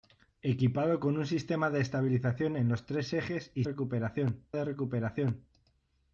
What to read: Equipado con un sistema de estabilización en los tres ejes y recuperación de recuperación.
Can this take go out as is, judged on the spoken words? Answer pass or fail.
pass